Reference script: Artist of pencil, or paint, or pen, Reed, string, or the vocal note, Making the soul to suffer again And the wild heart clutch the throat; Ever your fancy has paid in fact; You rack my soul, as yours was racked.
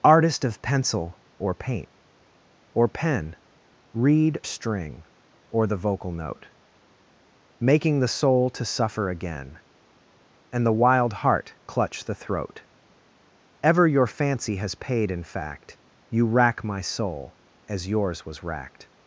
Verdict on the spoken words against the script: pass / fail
pass